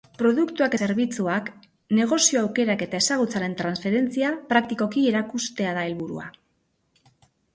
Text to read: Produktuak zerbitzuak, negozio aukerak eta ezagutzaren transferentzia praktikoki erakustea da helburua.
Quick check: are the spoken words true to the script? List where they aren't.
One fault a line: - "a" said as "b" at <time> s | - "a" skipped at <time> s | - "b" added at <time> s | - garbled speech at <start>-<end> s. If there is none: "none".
none